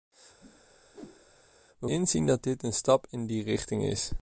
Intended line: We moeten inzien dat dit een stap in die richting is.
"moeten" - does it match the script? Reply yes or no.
no